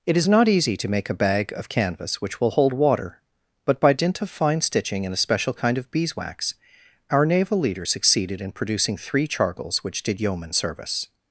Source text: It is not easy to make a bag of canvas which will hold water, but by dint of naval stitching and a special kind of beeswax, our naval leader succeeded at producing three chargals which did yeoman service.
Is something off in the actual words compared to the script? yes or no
yes